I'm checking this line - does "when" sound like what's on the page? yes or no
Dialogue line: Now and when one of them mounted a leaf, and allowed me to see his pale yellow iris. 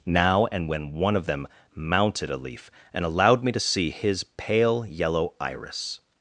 yes